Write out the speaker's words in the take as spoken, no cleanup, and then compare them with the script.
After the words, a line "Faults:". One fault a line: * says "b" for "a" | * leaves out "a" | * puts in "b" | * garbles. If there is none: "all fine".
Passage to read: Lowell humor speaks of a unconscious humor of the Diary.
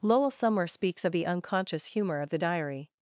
Lowell somewhere speaks of the unconscious humor of the Diary.
Faults:
* says "somewhere" for "humor"
* says "the" for "a"